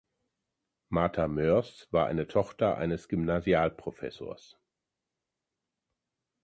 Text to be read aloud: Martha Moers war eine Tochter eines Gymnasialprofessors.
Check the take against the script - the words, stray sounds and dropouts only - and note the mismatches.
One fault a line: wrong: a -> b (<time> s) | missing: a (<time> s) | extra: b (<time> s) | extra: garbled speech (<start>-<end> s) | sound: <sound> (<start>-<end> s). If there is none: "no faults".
no faults